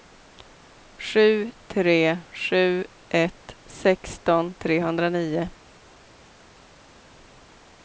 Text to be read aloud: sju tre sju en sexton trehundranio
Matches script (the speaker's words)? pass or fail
fail